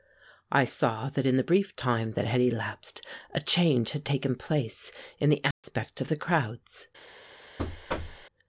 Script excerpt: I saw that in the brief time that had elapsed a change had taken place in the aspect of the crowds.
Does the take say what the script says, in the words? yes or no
yes